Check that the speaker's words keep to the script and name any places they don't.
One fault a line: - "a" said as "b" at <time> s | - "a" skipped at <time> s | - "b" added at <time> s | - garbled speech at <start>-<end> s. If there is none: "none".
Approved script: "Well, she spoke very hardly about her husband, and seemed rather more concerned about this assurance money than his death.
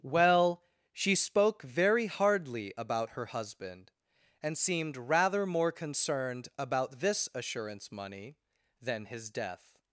none